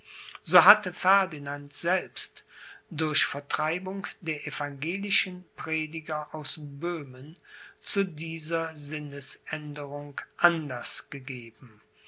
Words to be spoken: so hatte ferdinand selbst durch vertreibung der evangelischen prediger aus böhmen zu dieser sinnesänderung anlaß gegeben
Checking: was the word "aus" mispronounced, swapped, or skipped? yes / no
no